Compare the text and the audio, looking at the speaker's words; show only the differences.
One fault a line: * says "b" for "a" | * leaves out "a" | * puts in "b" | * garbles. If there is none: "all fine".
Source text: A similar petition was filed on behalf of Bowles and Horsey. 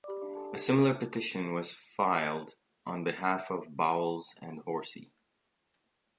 all fine